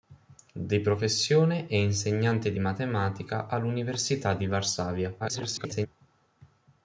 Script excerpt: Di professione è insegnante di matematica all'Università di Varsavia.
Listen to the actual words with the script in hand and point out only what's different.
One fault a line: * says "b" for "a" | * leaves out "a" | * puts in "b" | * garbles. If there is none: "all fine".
* garbles